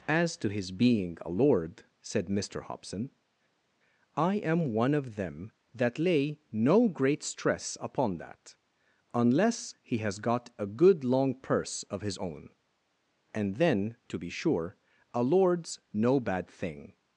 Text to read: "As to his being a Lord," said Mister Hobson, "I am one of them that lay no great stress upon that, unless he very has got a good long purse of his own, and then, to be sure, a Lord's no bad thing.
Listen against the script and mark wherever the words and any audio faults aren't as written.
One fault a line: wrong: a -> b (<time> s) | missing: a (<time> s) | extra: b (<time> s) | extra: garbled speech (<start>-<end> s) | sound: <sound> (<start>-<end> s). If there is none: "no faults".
missing: very (10.0 s)